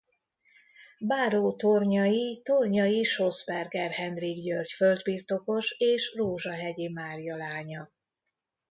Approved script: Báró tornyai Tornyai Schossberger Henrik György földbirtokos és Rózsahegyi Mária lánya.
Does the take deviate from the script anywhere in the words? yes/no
no